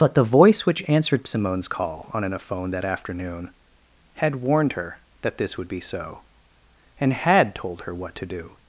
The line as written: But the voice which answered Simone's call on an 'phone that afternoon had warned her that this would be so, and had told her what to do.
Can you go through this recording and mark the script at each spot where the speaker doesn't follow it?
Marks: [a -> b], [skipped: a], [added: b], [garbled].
But the voice which answered Simone's call on an 'phone that afternoon had warned her that this would be so, and had told her what to do.